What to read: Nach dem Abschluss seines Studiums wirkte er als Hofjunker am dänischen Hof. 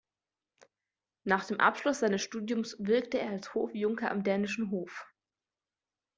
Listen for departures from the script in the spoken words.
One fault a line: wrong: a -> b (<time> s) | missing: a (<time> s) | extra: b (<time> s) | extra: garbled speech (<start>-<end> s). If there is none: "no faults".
no faults